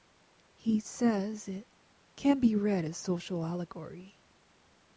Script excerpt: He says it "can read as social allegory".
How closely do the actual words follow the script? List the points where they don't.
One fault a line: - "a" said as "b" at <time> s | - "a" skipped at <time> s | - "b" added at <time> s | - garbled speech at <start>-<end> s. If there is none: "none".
- "be" added at 2.4 s